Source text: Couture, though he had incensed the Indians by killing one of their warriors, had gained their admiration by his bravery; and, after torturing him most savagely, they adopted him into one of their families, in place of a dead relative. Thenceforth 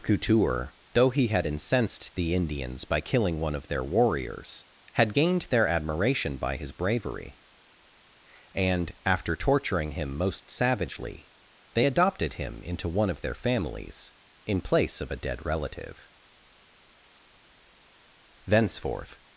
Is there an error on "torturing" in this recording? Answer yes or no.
no